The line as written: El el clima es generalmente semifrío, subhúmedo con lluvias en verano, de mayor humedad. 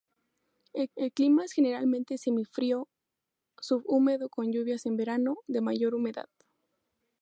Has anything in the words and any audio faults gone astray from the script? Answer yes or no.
no